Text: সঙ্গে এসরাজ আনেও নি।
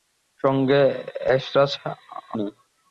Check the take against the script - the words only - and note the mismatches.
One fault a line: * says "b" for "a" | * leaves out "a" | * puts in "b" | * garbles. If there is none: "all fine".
* leaves out "আনেও"